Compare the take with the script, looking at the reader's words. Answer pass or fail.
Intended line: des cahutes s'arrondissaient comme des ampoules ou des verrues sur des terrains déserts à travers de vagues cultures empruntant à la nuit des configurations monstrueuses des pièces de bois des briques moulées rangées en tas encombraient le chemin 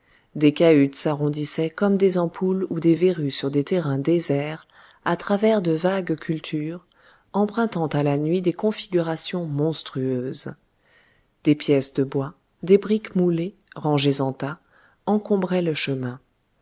pass